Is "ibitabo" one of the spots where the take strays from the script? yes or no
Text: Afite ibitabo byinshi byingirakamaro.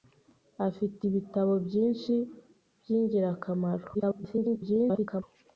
no